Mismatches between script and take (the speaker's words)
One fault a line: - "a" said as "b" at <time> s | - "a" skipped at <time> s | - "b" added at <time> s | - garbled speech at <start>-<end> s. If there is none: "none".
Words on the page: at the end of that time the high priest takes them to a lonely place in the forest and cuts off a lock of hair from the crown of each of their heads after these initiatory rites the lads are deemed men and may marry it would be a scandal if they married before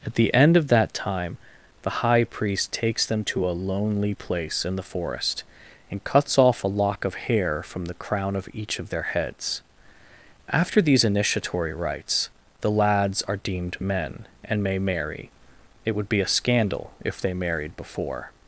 none